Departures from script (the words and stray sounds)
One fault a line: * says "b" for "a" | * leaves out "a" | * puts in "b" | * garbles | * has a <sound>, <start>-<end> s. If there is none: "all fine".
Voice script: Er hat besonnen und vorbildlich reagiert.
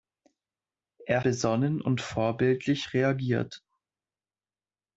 * leaves out "hat"